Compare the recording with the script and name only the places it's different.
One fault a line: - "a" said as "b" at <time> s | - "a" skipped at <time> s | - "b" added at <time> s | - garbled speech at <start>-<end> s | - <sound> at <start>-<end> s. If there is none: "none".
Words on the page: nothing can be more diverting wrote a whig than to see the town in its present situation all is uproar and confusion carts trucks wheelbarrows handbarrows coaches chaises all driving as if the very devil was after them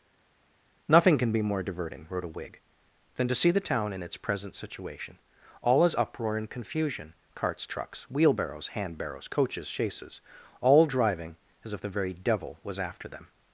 none